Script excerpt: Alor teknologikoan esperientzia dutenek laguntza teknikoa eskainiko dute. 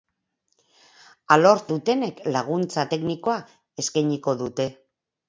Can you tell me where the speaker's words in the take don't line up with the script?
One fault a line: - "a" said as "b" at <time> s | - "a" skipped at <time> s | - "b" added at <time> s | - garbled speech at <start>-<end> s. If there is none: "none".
- "teknologikoan esperientzia" skipped at 1.6 s